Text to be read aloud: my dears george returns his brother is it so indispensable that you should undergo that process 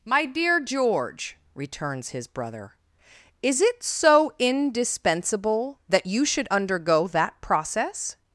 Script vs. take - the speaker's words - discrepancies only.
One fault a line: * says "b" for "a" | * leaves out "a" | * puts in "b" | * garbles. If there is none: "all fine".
* says "dear" for "dears"